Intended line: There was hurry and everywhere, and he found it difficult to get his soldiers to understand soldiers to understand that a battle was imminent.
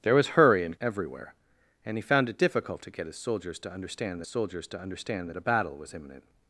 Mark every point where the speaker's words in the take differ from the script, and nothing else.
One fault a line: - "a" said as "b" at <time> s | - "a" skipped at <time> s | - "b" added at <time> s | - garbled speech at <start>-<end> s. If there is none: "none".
none